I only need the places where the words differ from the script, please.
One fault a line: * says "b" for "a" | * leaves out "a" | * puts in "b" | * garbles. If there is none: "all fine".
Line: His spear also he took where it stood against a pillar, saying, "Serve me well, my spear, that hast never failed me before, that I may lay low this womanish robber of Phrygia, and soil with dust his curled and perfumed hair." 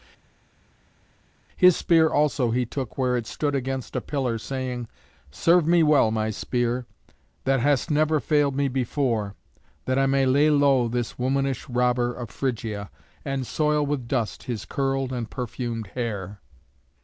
all fine